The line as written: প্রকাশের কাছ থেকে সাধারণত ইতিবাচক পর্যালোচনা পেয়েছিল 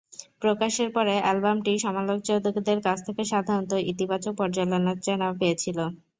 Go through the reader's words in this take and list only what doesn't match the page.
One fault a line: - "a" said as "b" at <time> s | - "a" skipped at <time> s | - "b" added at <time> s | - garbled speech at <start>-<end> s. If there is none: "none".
- "পরে অ্যালবামটি সমালোচকদের" added at 0.9 s